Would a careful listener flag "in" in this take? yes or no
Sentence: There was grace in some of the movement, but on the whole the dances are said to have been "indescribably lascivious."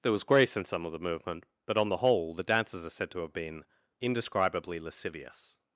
no